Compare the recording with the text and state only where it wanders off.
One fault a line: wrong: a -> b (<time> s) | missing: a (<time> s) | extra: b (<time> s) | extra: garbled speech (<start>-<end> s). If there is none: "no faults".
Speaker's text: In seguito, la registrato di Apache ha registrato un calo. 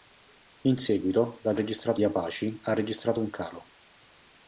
no faults